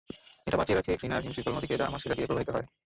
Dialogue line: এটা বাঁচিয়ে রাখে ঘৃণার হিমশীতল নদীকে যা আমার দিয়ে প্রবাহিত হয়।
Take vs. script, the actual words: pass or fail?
fail